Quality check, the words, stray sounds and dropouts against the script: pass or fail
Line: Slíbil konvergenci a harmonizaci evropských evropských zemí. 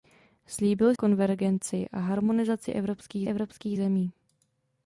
pass